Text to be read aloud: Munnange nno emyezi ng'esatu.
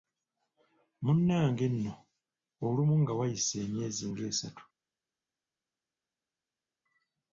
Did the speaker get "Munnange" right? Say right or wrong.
right